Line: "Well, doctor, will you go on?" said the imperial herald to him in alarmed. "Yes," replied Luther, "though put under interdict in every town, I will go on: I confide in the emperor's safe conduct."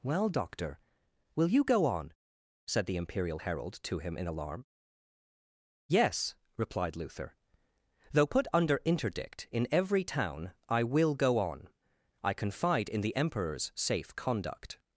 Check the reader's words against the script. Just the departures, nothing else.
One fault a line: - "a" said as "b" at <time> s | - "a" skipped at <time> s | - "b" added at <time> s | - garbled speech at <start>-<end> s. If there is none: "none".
- "alarmed" said as "alarm" at 4.3 s